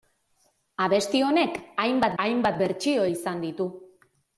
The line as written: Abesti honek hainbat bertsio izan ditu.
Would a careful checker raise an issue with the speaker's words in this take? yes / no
yes